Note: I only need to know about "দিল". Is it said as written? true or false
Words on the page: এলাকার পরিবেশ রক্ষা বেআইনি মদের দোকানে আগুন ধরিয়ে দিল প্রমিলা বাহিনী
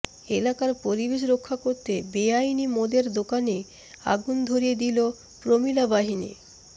true